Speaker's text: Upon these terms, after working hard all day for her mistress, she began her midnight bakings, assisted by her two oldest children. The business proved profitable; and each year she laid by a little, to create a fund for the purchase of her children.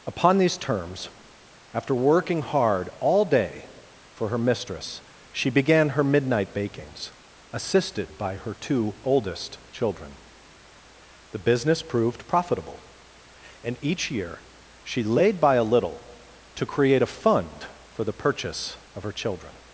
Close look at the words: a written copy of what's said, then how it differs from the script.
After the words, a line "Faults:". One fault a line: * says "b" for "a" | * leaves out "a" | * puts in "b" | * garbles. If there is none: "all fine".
Upon these terms, after working hard all day for her mistress, she began her midnight bakings, assisted by her two oldest children. The business proved profitable; and each year she laid by a little, to create a fund for the purchase of her children.
Faults:
all fine